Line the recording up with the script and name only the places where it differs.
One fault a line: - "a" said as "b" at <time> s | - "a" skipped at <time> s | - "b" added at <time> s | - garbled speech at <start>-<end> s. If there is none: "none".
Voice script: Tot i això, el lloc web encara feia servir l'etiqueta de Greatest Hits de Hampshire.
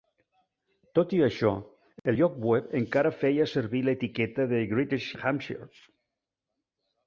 - "Hits" skipped at 5.2 s